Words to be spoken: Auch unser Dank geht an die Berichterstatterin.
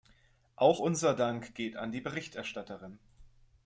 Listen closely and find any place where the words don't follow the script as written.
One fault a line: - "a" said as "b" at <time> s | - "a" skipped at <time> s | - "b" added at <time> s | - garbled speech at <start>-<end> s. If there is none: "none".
none